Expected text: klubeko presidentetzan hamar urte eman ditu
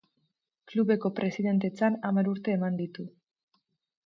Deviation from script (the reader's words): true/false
false